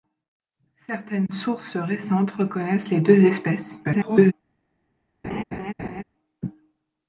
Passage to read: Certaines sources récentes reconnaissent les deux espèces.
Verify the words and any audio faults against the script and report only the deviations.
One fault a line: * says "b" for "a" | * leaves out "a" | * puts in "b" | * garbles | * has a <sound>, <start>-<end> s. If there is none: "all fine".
* garbles
* has a laugh, 5.2-6.0 s